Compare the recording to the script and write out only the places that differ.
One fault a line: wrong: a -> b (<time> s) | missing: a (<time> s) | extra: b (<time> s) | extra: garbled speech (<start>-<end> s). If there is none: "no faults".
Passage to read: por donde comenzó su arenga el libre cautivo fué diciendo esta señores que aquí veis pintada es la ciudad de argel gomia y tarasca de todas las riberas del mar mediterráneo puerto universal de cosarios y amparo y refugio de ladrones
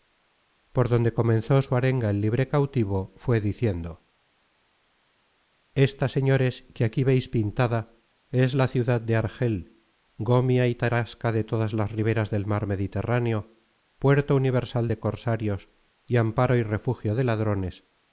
no faults